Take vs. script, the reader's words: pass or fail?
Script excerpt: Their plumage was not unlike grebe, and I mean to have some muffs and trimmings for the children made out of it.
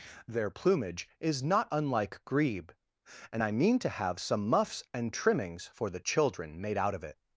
fail